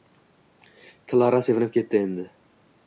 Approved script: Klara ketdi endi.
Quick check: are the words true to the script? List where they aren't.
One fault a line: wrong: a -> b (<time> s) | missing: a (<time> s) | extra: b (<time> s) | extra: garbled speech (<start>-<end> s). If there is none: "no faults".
extra: sevinib (1.5 s)